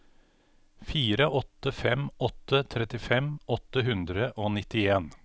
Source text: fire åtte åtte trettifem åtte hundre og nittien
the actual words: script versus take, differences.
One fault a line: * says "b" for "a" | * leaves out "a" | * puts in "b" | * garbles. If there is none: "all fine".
* puts in "fem"